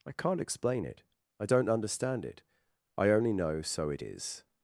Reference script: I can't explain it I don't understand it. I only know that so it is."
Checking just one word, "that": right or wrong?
wrong